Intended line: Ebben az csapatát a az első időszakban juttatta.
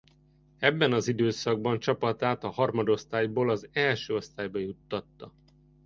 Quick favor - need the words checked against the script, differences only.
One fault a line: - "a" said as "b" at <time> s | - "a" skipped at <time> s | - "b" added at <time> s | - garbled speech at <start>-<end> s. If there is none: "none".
- "időszakban" added at 1.1 s
- "harmadosztályból" added at 2.5 s
- "időszakban" said as "osztályba" at 4.2 s